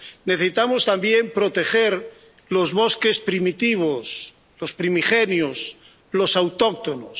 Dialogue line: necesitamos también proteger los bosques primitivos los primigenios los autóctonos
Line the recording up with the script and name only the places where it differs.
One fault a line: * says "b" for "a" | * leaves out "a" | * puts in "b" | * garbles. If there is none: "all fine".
all fine